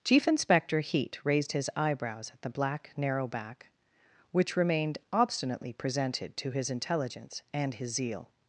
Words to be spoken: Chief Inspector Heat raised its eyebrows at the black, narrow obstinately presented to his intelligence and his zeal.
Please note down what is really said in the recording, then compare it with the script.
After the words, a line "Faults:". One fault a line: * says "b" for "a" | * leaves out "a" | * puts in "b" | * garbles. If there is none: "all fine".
Chief Inspector Heat raised his eyebrows at the black, narrow back, which remained obstinately presented to his intelligence and his zeal.
Faults:
* says "his" for "its"
* puts in "back which remained"